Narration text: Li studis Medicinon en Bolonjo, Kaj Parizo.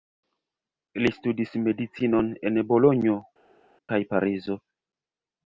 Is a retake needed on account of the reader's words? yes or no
no